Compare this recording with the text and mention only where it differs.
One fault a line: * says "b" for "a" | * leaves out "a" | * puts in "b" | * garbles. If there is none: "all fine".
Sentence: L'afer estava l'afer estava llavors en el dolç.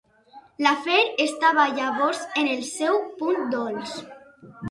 * leaves out "l'afer estava"
* puts in "seu punt"